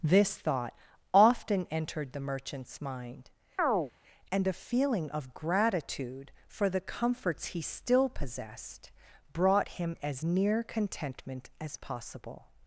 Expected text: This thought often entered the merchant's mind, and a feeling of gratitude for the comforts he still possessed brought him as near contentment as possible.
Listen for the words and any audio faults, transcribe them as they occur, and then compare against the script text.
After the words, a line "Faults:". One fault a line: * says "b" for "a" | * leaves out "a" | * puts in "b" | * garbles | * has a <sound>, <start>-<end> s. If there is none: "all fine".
This thought often entered the merchant's mind, and a feeling of gratitude for the comforts he still possessed brought him as near contentment as possible.
Faults:
* has a chirp, 3.6-3.9 s